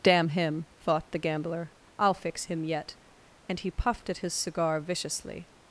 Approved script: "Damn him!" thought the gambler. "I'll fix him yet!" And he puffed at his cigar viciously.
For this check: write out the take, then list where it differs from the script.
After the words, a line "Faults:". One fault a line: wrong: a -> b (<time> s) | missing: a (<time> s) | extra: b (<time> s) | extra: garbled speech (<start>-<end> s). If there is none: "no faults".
"Damn him!" thought the gambler. "I'll fix him yet!" And he puffed at his cigar viciously.
Faults:
no faults